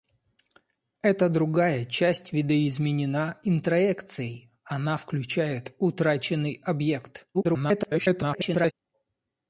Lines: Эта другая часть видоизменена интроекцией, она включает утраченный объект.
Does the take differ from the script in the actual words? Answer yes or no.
yes